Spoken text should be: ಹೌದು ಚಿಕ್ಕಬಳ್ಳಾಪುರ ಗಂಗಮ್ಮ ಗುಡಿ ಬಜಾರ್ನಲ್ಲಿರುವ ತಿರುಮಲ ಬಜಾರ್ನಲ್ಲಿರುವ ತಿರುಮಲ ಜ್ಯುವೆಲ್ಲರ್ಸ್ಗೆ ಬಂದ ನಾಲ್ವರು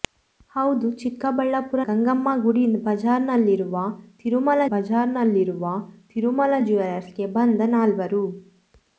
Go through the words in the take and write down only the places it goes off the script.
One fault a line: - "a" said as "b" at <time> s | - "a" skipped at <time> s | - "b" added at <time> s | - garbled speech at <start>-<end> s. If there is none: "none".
none